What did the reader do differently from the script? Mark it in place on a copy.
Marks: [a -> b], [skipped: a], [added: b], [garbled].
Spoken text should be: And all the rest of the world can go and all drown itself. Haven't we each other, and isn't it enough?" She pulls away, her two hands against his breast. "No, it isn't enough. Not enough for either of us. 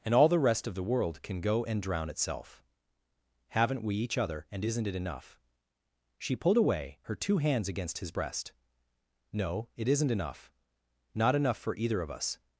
And all the rest of the world can go and [skipped: all] drown itself. Haven't we each other, and isn't it enough?" She [pulls -> pulled] away, her two hands against his breast. "No, it isn't enough. Not enough for either of us.